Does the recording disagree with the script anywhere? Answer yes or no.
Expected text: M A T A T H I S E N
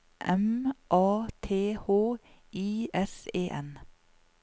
yes